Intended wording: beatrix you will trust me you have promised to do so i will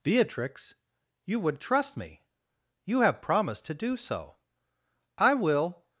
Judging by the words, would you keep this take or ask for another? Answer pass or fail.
fail